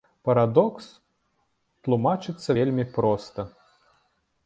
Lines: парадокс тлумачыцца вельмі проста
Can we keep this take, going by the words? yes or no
yes